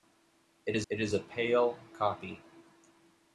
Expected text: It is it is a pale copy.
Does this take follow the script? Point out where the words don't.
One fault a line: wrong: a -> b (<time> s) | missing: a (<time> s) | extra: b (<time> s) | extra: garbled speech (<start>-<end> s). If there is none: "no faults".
no faults